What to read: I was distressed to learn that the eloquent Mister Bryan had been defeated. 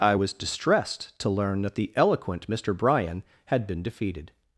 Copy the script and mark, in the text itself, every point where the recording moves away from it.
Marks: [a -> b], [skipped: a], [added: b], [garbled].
I was distressed to learn that the eloquent Mister Bryan had been defeated.